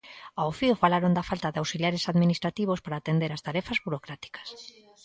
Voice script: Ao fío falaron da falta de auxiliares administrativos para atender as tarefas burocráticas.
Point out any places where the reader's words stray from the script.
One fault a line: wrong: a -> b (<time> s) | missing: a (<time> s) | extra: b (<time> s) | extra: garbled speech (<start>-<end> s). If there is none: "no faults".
no faults